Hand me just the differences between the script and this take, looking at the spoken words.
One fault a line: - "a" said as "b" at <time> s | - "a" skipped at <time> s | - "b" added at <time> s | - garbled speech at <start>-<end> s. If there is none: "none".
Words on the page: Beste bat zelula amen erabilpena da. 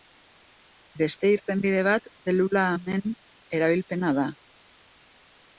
- "irtenbide" added at 1.3 s